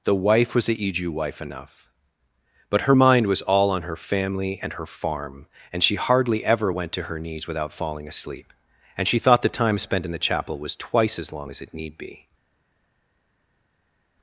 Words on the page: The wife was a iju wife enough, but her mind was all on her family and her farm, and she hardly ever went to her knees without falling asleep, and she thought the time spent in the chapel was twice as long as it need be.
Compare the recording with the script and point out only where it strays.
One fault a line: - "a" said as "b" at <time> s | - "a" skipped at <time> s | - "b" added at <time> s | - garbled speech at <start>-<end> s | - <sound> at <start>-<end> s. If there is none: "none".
none